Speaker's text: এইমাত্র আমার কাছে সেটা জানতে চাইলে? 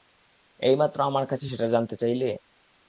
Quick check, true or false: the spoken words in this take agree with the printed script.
true